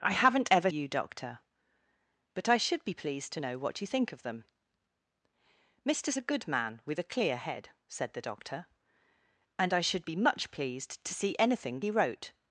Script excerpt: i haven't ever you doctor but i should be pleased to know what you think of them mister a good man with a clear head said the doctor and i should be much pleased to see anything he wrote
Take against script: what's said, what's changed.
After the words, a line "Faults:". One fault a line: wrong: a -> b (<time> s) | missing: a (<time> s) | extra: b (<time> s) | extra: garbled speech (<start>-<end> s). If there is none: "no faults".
i haven't ever you doctor but i should be pleased to know what you think of them mister a good man with a clear head said the doctor and i should be much pleased to see anything he wrote
Faults:
no faults